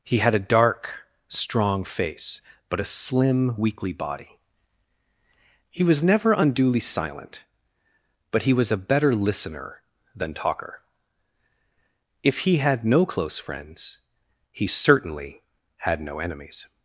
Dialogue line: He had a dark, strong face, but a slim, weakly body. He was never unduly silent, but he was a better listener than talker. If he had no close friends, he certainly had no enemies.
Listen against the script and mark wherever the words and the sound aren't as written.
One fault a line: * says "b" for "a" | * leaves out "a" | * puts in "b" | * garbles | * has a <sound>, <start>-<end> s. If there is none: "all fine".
all fine